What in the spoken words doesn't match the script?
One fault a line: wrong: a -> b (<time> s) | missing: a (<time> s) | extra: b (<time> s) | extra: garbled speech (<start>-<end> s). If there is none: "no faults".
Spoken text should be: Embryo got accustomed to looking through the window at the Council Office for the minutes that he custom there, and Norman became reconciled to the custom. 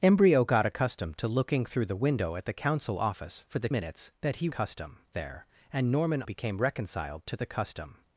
no faults